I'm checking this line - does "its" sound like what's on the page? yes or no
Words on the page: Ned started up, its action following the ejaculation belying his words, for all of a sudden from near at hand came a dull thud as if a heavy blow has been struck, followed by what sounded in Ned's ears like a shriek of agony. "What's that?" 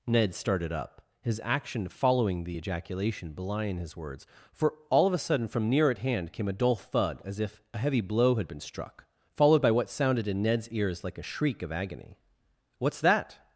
no